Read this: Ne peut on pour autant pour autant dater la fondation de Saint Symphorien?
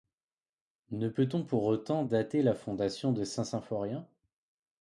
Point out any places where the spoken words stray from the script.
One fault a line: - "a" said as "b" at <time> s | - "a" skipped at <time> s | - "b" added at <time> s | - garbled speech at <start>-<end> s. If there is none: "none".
- "pour autant" skipped at 2.0 s